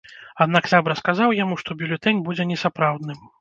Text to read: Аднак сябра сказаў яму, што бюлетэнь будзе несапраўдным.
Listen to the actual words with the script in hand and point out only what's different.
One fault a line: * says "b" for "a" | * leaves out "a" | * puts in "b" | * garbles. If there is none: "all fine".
all fine